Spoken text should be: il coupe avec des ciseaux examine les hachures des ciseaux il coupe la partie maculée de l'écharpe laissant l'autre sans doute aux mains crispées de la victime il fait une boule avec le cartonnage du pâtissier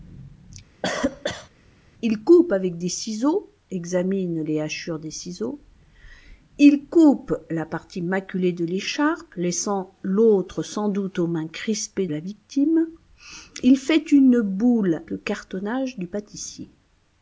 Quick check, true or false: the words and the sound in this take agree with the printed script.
false